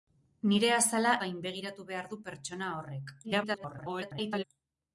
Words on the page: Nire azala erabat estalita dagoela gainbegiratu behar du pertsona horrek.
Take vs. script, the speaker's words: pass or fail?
fail